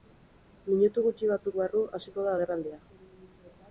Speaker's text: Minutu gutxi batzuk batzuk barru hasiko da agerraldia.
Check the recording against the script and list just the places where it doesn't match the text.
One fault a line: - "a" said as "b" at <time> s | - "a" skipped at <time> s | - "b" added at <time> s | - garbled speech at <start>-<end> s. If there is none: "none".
- "batzuk" skipped at 1.6 s